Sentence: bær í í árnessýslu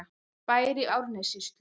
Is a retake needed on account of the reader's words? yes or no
no